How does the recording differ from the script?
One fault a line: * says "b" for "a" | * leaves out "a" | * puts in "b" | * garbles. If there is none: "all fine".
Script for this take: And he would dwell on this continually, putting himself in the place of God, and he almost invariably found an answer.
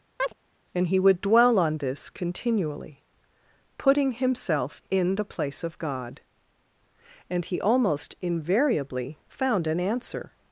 all fine